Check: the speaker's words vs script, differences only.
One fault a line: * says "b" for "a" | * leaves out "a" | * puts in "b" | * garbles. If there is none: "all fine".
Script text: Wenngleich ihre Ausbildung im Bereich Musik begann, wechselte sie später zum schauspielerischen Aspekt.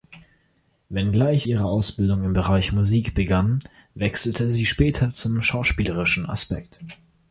all fine